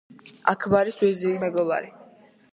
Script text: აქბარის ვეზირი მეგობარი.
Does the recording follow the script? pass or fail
pass